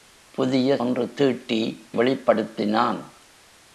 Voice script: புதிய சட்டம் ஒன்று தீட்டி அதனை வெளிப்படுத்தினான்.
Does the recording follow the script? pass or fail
fail